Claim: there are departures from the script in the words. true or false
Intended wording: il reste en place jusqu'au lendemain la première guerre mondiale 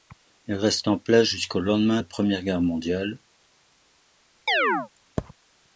false